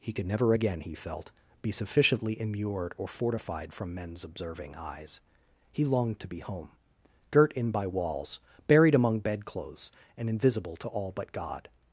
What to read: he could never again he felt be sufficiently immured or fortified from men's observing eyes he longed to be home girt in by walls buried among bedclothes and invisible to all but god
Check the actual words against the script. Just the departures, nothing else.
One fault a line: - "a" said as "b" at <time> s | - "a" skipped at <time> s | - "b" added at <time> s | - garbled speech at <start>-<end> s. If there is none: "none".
none